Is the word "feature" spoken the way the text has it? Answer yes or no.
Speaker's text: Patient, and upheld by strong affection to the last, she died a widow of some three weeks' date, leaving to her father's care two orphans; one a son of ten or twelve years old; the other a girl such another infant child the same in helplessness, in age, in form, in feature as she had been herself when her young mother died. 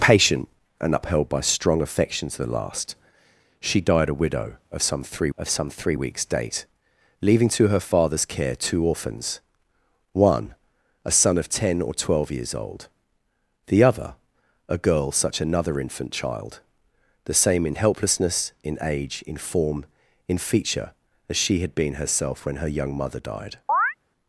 yes